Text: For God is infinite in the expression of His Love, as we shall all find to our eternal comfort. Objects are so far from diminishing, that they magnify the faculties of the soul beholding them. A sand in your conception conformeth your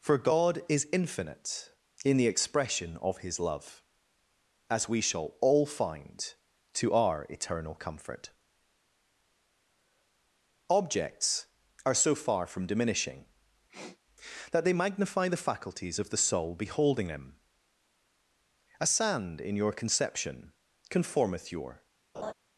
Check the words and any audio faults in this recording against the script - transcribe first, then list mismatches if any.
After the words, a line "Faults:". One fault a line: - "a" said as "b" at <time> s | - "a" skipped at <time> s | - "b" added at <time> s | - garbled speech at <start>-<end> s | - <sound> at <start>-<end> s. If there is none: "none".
For God is infinite in the expression of His Love, as we shall all find to our eternal comfort. Objects are so far from diminishing, that they magnify the faculties of the soul beholding them. A sand in your conception conformeth your
Faults:
- sniff at 13.7-14.0 s
- laugh at 22.1-22.3 s